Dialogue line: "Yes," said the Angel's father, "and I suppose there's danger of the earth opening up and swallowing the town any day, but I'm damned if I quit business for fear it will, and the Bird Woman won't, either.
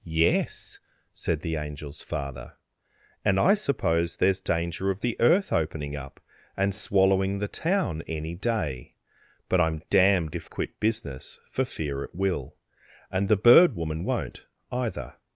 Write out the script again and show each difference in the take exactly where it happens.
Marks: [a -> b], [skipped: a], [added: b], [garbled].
"Yes," said the Angel's father, "and I suppose there's danger of the earth opening up and swallowing the town any day, but I'm damned if [skipped: I] quit business for fear it will, and the Bird Woman won't, either.